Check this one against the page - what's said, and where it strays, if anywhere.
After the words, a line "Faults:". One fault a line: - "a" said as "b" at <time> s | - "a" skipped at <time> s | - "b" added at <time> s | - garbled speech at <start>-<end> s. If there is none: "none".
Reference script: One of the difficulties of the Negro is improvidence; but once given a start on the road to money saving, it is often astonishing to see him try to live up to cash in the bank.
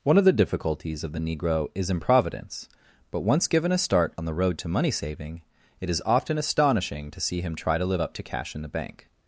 One of the difficulties of the Negro is improvidence; but once given a start on the road to money saving, it is often astonishing to see him try to live up to cash in the bank.
Faults:
none